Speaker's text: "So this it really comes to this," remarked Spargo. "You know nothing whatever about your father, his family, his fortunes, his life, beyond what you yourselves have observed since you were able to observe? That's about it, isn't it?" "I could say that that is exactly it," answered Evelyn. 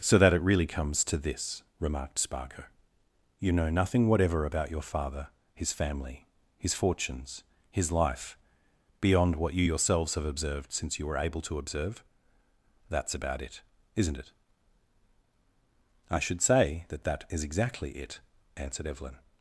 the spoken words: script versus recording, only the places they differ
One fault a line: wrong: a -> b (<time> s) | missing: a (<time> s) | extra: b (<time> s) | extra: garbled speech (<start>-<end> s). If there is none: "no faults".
wrong: this -> that (0.2 s)
wrong: could -> should (16.2 s)